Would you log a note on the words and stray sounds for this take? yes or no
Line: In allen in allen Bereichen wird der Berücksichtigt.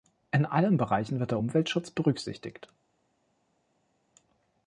yes